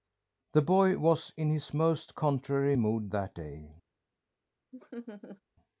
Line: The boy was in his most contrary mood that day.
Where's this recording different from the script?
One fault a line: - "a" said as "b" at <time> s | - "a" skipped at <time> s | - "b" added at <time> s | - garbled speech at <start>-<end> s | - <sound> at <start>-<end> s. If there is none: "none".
- laugh at 4.7-5.4 s